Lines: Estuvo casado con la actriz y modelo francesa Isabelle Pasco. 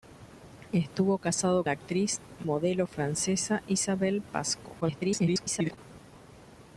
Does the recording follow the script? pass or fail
fail